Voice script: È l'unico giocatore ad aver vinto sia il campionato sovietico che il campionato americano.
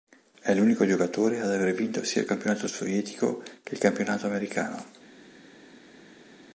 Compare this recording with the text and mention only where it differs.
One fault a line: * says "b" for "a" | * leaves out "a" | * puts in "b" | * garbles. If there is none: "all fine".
all fine